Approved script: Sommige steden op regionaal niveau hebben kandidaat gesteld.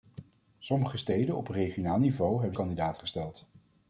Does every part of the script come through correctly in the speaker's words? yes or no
yes